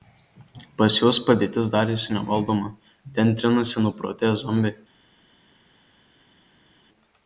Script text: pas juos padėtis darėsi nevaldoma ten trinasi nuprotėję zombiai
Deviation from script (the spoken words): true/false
false